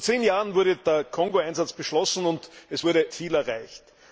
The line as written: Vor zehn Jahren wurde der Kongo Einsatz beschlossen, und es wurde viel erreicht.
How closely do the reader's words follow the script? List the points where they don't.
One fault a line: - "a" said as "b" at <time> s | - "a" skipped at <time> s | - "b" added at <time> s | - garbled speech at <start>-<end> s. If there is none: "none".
none